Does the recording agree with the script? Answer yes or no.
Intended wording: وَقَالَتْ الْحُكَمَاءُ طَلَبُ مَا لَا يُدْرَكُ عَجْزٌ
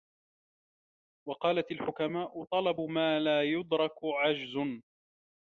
yes